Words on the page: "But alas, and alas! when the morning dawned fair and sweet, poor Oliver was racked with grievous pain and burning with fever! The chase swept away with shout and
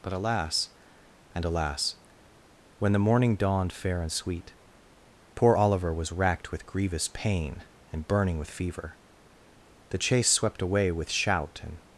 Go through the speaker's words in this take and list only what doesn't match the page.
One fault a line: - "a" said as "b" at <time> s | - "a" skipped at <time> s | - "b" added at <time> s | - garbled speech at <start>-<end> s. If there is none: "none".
none